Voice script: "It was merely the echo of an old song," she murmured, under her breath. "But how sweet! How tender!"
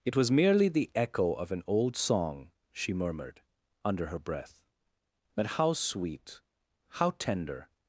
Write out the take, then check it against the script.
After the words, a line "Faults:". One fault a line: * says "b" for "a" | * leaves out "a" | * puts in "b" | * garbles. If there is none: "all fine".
"It was merely the echo of an old song," she murmured, under her breath. "But how sweet! How tender!"
Faults:
all fine